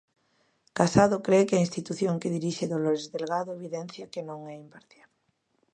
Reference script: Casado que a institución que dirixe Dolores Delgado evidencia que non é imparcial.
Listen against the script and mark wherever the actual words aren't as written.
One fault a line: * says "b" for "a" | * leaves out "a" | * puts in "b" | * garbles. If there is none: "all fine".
* puts in "cre"